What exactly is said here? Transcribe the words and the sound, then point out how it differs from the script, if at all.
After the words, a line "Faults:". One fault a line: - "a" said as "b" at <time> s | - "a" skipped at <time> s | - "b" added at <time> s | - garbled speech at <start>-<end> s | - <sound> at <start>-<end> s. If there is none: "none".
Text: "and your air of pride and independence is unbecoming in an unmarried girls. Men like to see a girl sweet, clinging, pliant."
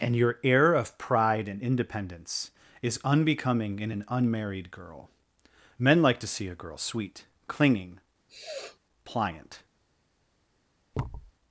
"and your air of pride and independence is unbecoming in an unmarried girl. Men like to see a girl sweet, clinging, pliant."
Faults:
- "girls" said as "girl" at 4.7 s
- sniff at 8.3-8.8 s
- thud at 10.9-11.3 s